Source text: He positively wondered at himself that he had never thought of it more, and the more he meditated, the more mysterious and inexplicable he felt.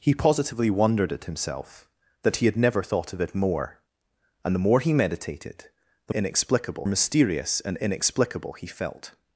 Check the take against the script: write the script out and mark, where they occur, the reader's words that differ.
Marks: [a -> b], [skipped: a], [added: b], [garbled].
He positively wondered at himself that he had never thought of it more, and the more he meditated, the [more -> inexplicable] mysterious and inexplicable he felt.